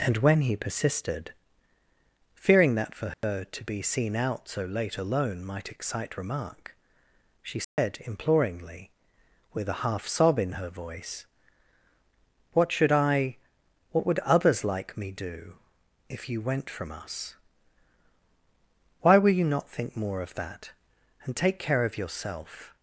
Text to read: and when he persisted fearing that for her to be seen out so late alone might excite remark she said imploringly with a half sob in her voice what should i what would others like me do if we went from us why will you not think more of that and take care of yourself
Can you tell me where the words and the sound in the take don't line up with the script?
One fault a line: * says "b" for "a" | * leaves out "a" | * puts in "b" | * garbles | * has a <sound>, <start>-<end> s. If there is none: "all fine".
* has a dropout, 3.1-3.2 s
* has a dropout, 7.6-7.8 s
* says "you" for "we"